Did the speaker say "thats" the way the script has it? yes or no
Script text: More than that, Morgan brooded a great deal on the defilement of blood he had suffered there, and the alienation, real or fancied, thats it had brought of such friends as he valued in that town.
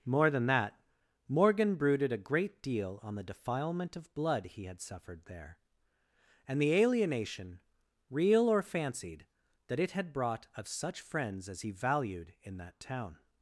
no